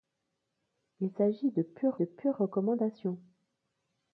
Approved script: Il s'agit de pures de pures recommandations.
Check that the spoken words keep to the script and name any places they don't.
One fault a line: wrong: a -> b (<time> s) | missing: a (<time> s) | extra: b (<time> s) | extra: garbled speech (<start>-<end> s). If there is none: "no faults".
no faults